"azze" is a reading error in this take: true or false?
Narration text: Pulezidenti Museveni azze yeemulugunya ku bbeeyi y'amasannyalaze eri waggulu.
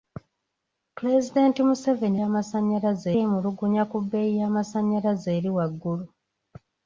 true